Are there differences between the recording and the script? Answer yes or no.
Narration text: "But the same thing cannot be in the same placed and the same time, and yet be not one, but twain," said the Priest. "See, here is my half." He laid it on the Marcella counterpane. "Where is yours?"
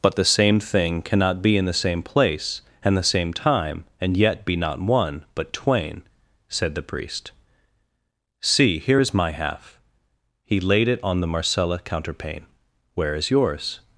yes